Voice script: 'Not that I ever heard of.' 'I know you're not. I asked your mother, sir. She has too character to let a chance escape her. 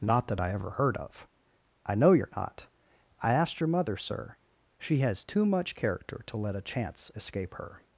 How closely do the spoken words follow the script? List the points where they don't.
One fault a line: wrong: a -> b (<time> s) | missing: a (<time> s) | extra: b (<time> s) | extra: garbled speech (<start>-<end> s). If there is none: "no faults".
extra: much (5.4 s)